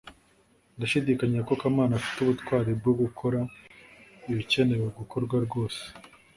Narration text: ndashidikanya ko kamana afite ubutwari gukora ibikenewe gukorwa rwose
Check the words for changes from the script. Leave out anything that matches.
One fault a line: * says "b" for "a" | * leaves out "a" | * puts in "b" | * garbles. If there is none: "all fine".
* puts in "bwo"